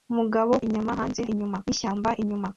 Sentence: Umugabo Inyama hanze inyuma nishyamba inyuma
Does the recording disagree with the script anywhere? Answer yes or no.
no